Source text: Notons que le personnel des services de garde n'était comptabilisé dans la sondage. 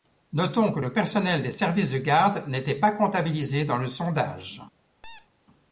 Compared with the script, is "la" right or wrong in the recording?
wrong